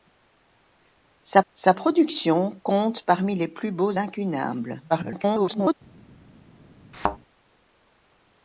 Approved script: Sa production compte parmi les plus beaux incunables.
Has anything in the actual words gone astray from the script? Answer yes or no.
yes